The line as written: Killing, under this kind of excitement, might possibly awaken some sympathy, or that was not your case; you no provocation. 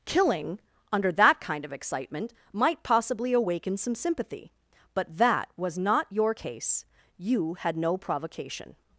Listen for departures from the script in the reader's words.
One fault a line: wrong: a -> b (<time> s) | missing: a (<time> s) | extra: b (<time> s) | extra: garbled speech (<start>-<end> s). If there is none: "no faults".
wrong: this -> that (1.1 s)
wrong: or -> but (4.9 s)
extra: had (7.5 s)